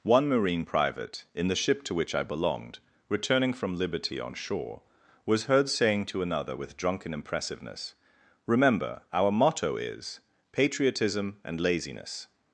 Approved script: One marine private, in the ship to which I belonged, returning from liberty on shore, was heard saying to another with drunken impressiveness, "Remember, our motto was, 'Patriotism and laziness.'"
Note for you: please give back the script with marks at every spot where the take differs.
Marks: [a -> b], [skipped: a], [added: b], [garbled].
One marine private, in the ship to which I belonged, returning from liberty on shore, was heard saying to another with drunken impressiveness, "Remember, our motto [was, -> is] 'Patriotism and laziness.'"